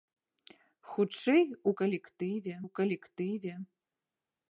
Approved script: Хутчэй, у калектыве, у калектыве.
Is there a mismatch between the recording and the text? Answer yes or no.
no